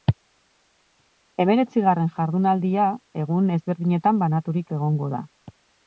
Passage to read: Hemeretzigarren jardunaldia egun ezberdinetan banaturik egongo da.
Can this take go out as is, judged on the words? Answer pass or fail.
pass